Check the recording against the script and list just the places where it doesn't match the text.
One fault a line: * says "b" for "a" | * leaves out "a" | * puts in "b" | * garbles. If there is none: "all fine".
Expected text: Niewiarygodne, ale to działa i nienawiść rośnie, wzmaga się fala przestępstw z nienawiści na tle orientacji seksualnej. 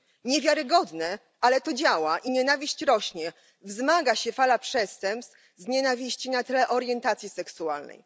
all fine